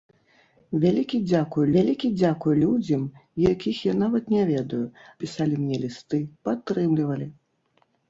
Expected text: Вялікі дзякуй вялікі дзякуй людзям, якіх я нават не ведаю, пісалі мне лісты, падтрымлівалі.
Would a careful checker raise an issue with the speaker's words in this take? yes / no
no